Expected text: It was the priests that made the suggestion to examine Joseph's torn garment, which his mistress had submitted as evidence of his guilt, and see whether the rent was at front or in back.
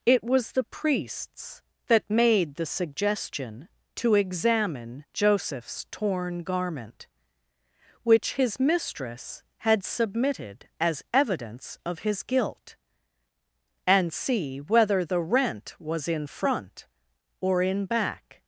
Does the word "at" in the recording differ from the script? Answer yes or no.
yes